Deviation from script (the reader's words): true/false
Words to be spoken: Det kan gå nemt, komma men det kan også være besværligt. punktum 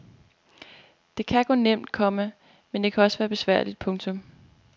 false